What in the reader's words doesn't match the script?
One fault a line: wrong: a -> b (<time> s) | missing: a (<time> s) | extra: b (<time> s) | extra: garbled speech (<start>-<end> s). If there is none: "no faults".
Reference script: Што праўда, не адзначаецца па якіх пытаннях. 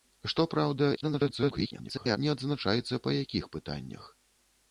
extra: garbled speech (1.0-2.2 s)